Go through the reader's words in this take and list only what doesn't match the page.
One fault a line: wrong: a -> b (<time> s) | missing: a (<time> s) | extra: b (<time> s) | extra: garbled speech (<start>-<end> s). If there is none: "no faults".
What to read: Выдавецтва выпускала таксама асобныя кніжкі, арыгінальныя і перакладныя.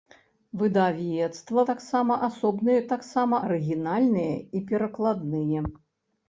missing: выпускала (1.6 s)
wrong: кніжкі -> таксама (2.9 s)